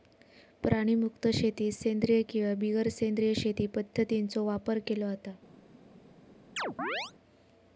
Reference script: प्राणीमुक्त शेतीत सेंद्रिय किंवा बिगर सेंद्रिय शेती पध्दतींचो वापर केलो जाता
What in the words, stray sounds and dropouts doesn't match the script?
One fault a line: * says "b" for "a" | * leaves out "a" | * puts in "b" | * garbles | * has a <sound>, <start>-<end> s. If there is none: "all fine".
* has a chirp, 6.6-7.1 s